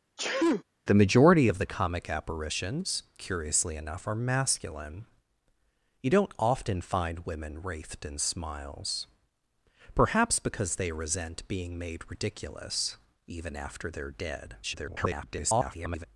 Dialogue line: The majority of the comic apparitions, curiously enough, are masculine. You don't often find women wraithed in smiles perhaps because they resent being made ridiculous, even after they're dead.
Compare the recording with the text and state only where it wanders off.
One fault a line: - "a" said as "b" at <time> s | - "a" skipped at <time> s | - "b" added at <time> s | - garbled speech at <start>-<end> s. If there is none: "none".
- garbled speech at 14.6-16.1 s